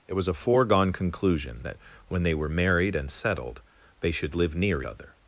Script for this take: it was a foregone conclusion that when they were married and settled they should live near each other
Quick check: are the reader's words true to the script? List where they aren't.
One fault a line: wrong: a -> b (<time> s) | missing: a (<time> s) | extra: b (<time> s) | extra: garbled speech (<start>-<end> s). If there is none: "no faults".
missing: each (4.8 s)